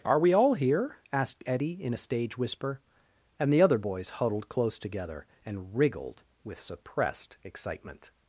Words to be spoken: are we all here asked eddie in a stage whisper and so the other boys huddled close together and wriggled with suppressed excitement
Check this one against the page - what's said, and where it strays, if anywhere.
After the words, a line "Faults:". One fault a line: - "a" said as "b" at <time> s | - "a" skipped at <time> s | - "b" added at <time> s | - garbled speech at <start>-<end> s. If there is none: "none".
are we all here asked eddie in a stage whisper and the other boys huddled close together and wriggled with suppressed excitement
Faults:
- "so" skipped at 3.5 s